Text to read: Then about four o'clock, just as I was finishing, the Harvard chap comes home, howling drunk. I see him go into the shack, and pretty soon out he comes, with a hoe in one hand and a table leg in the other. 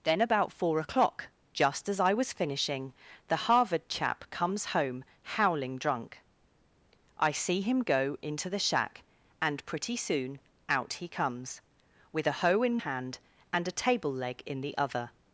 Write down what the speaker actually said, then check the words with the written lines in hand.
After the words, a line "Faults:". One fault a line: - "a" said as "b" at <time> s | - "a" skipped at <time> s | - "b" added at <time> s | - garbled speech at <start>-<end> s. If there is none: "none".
Then about four o'clock, just as I was finishing, the Harvard chap comes home, howling drunk. I see him go into the shack, and pretty soon out he comes, with a hoe in hand and a table leg in the other.
Faults:
- "one" skipped at 12.8 s